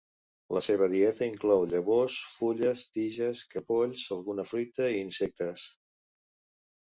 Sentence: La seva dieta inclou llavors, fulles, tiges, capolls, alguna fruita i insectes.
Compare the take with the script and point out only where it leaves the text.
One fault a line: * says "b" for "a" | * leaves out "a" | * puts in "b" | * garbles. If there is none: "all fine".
all fine